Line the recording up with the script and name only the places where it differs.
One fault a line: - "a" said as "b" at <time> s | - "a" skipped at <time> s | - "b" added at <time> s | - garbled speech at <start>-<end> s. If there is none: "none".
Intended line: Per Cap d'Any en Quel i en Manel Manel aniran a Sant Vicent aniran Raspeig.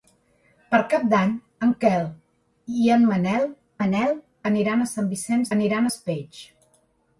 none